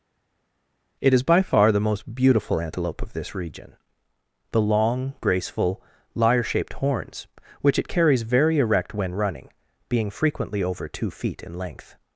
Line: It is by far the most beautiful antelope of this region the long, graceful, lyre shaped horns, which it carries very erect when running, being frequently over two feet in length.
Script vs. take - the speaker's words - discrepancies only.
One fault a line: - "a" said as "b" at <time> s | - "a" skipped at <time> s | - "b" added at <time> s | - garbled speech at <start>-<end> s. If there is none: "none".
none